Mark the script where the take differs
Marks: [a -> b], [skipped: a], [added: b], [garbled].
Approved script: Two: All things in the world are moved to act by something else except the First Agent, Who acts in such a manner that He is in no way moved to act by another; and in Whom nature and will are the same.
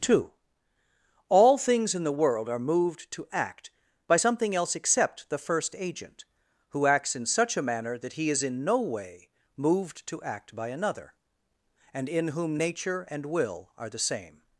Two: All things in the world are moved to act by something else except the First Agent, Who acts in such a manner that He is in no way moved to act by another; and in Whom nature and will are the same.